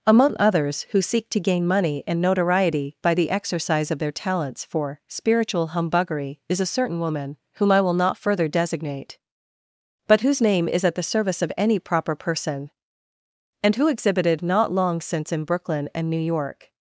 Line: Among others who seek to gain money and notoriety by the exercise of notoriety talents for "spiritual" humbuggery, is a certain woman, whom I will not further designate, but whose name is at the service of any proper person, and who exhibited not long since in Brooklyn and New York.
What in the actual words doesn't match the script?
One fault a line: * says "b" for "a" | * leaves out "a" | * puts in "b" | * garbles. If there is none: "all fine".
* says "their" for "notoriety"